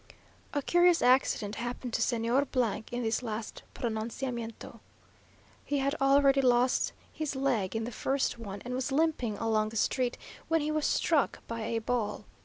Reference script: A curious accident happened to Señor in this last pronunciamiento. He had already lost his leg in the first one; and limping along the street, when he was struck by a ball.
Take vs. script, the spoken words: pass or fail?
fail